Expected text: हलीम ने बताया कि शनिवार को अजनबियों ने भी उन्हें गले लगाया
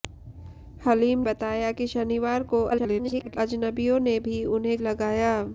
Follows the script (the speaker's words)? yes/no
no